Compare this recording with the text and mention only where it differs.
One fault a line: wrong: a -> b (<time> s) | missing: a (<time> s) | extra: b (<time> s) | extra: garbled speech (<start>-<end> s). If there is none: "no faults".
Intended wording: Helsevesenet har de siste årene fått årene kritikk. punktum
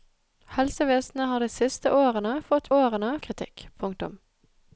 no faults